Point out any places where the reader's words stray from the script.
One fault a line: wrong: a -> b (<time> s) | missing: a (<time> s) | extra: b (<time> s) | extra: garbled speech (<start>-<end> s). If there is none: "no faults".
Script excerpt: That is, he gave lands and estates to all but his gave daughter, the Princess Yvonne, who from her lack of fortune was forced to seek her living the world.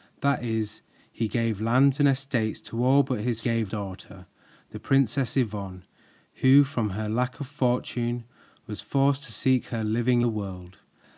no faults